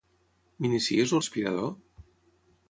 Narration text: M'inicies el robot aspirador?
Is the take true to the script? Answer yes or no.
no